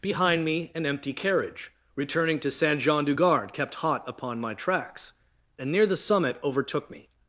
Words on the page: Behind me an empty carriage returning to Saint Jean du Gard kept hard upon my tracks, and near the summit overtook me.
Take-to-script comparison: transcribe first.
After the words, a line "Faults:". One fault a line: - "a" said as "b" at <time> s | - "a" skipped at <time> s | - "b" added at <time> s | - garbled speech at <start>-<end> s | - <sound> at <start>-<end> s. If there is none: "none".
Behind me an empty carriage returning to Saint Jean du Gard kept hot upon my tracks, and near the summit overtook me.
Faults:
- "hard" said as "hot" at 3.8 s